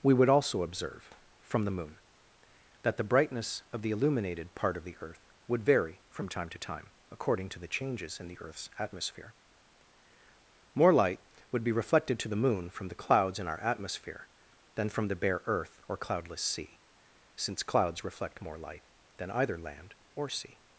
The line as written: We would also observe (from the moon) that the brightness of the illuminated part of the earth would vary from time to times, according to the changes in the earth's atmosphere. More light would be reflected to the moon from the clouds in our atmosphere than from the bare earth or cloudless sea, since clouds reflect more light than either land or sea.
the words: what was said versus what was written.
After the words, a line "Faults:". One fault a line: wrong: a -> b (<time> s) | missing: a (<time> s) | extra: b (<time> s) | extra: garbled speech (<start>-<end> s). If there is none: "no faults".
We would also observe (from the moon) that the brightness of the illuminated part of the earth would vary from time to time, according to the changes in the earth's atmosphere. More light would be reflected to the moon from the clouds in our atmosphere than from the bare earth or cloudless sea, since clouds reflect more light than either land or sea.
Faults:
wrong: times -> time (6.6 s)